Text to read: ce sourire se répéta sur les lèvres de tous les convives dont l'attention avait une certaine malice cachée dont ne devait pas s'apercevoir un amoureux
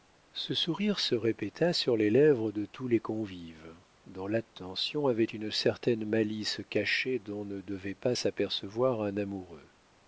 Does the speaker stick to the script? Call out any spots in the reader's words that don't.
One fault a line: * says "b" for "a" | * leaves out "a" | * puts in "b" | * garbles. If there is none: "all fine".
all fine